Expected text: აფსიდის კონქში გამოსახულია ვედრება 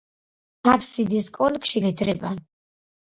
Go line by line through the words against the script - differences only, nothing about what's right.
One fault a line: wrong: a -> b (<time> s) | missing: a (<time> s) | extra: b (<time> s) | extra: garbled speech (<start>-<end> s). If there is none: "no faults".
missing: გამოსახულია (1.8 s)